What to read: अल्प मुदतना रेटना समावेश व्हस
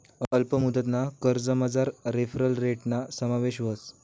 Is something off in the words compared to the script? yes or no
yes